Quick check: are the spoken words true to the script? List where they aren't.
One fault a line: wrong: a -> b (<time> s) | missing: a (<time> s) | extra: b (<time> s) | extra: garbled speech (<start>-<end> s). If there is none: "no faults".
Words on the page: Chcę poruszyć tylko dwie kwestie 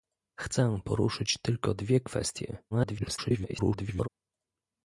extra: garbled speech (2.7-4.1 s)